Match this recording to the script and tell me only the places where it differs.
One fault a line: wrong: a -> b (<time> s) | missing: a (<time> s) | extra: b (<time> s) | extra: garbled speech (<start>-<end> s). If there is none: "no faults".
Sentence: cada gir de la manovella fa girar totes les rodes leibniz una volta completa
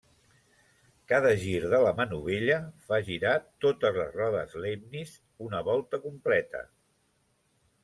no faults